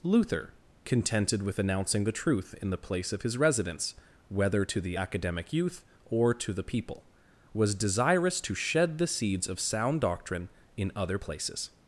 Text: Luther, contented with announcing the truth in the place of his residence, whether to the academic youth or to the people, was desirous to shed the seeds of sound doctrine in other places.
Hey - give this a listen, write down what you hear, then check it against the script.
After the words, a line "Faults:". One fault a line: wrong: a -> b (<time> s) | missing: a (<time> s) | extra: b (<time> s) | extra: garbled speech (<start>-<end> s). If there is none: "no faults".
Luther, contented with announcing the truth in the place of his residence, whether to the academic youth or to the people, was desirous to shed the seeds of sound doctrine in other places.
Faults:
no faults